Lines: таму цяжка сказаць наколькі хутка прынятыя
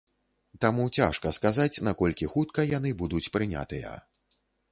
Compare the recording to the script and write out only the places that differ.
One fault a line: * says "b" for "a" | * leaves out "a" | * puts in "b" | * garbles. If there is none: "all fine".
* puts in "яны будуць"